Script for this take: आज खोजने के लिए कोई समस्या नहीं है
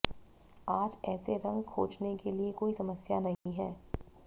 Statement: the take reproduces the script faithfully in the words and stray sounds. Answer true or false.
false